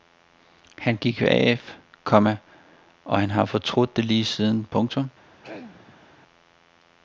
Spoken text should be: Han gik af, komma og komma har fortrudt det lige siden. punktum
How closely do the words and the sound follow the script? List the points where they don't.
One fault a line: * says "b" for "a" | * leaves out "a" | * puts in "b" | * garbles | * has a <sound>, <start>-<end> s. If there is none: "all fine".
* says "han" for "komma"
* has a throat clearing, 5.4-6.1 s